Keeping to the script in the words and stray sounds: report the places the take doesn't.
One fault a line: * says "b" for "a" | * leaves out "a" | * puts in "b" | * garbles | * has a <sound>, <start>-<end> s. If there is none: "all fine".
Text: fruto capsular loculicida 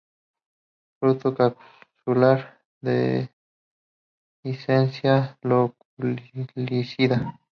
* puts in "dehiscencia"